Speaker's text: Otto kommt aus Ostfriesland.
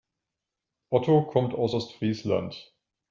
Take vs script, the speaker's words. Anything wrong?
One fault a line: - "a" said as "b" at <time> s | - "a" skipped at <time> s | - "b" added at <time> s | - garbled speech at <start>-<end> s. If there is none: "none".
none